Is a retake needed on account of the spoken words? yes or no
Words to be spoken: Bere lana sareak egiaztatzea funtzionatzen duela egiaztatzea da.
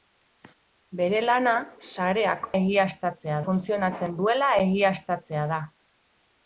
no